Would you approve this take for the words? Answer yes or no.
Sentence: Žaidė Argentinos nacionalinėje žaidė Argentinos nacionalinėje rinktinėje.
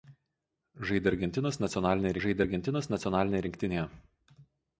yes